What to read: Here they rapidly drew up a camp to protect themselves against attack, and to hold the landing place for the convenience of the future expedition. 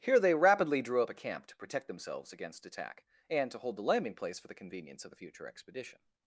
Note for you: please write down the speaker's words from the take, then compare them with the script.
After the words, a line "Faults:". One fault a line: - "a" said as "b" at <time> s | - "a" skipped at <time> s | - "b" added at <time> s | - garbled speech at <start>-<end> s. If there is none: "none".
Here they rapidly drew up a camp to protect themselves against attack, and to hold the landing place for the convenience of the future expedition.
Faults:
none